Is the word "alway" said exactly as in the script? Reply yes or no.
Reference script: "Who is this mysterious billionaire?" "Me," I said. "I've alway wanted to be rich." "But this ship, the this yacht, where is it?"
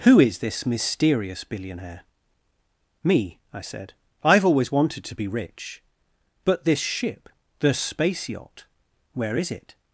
no